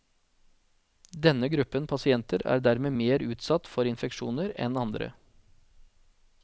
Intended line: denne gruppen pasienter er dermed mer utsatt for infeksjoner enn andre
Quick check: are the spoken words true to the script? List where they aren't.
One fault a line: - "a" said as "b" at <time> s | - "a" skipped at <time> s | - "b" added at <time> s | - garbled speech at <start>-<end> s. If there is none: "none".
none